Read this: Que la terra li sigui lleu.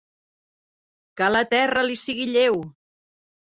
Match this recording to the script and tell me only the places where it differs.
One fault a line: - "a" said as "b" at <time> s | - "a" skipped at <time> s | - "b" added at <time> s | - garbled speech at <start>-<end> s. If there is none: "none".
none